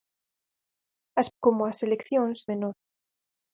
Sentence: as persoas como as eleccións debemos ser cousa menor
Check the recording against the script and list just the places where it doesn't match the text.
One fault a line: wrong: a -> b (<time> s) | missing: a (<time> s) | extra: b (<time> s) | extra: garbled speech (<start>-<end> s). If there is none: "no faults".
missing: persoas (1.3 s)
missing: debemos ser cousa (2.4 s)